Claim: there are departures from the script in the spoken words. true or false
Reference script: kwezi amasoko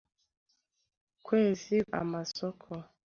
false